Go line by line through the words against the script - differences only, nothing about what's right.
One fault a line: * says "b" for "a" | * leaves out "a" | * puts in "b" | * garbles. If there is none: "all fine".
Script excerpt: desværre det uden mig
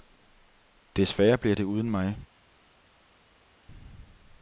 * puts in "bliver"